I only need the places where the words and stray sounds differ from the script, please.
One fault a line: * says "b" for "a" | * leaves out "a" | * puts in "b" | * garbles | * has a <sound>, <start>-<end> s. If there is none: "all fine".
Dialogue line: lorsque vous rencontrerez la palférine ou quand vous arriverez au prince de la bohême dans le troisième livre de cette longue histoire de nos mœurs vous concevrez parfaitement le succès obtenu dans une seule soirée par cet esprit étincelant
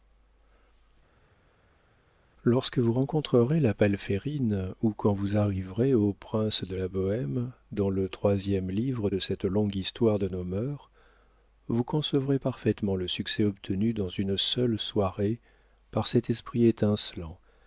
all fine